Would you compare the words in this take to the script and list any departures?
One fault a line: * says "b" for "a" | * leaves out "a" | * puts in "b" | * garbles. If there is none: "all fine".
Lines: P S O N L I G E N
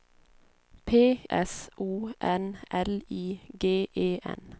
all fine